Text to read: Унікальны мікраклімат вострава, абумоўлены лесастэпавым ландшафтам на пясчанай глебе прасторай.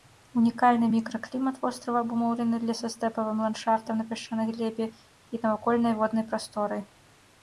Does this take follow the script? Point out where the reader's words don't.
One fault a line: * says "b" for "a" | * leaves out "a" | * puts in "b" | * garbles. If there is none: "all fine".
* puts in "і навакольнай воднай"